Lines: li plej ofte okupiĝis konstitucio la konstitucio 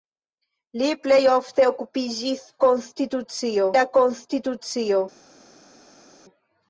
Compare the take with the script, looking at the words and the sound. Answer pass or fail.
pass